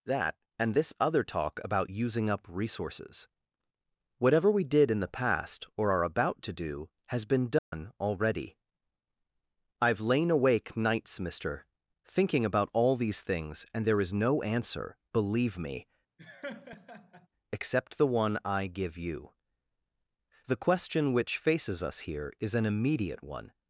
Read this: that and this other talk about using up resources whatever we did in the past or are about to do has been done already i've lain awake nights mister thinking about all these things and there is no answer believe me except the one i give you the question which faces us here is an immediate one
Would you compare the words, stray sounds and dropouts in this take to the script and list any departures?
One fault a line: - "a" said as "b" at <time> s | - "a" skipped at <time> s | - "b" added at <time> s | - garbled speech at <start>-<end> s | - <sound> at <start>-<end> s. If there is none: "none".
- dropout at 7.6-7.7 s
- laugh at 16.2-17.3 s